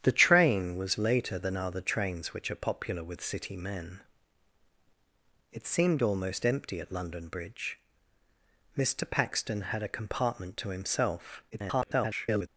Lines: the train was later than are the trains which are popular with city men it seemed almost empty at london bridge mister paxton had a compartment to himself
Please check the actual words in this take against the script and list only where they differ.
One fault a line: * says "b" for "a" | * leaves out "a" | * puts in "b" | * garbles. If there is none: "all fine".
* garbles